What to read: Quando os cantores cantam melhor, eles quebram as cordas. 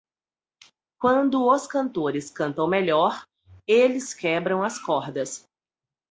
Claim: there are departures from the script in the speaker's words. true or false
false